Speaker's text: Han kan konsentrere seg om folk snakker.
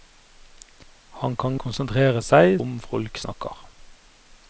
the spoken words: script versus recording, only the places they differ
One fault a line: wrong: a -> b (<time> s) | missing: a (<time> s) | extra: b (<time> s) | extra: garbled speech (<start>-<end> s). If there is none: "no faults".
no faults